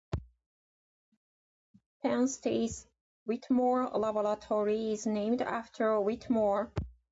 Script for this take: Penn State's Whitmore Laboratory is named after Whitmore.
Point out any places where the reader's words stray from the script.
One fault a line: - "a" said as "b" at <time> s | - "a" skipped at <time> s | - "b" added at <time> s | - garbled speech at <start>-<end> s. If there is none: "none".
none